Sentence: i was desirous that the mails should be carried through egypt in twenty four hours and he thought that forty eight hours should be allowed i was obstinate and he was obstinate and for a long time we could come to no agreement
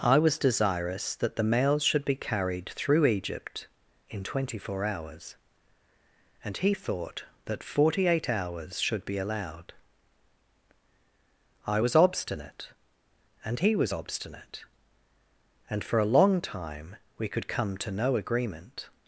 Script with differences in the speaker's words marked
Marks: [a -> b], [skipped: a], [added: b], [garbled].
i was desirous that the mails should be carried through egypt in twenty four hours and he thought that forty eight hours should be allowed i was obstinate and he was obstinate and for a long time we could come to no agreement